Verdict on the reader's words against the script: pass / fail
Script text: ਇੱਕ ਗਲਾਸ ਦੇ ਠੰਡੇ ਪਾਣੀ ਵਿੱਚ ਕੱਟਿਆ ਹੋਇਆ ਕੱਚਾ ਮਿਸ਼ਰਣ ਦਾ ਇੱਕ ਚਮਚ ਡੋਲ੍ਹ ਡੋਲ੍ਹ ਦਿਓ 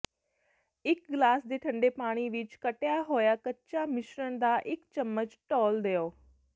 fail